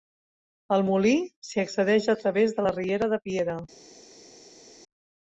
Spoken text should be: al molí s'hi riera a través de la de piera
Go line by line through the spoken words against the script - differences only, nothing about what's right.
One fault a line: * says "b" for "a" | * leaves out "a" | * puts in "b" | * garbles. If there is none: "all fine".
* says "accedeix" for "riera"
* puts in "riera"